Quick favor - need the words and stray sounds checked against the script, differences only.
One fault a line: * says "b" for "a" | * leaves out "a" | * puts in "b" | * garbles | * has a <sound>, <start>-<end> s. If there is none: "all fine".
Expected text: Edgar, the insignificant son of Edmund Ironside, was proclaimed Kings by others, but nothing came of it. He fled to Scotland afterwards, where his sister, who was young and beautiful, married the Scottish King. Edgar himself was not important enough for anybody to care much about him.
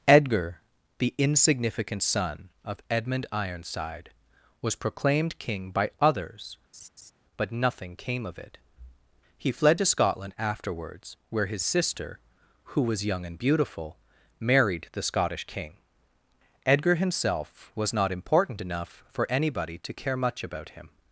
* says "King" for "Kings"
* has a laugh, 6.7-7.1 s